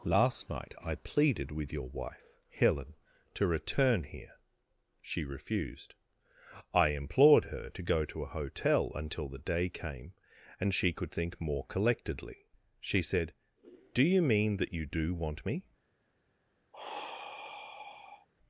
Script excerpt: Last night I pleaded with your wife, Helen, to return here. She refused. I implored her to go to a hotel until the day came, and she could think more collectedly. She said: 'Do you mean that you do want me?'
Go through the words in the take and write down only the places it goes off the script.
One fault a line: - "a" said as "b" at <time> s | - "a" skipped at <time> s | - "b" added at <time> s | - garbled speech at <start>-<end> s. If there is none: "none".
none